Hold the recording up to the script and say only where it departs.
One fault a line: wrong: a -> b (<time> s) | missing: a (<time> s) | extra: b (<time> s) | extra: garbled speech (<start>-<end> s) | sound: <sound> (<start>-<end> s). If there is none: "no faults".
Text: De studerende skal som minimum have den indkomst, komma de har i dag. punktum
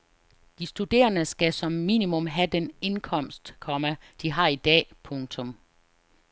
no faults